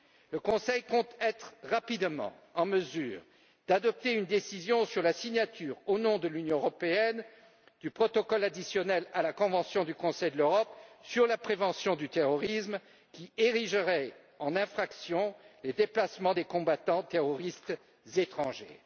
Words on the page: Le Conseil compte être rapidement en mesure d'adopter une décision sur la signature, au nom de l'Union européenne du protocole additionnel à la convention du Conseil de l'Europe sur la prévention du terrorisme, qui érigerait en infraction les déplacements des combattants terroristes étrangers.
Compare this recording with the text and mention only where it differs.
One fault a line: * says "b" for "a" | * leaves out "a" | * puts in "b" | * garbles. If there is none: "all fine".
all fine